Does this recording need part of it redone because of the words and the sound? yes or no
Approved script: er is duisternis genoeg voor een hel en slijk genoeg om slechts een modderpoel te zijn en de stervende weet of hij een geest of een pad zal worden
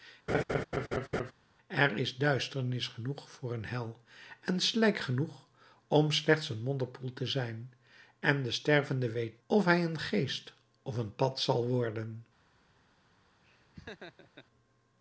yes